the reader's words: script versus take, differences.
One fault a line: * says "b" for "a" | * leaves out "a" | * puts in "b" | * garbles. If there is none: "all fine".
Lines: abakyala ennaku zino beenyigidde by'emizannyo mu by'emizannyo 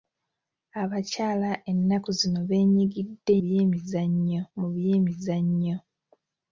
all fine